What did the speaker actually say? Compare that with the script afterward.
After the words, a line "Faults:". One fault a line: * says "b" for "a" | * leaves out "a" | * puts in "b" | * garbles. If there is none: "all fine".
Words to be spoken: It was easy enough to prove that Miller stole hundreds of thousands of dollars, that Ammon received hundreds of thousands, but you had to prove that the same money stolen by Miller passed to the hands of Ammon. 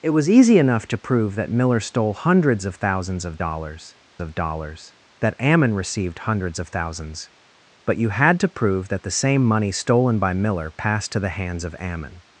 It was easy enough to prove that Miller stole hundreds of thousands of dollars of dollars, that Ammon received hundreds of thousands, but you had to prove that the same money stolen by Miller passed to the hands of Ammon.
Faults:
* puts in "of dollars"